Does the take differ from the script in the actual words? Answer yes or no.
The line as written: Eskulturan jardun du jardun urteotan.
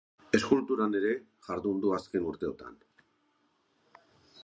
yes